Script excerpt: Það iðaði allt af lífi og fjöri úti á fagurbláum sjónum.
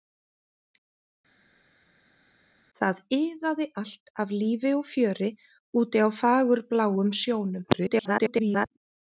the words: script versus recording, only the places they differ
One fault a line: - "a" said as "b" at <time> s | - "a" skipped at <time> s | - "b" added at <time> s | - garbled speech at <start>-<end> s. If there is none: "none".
- garbled speech at 7.7-8.7 s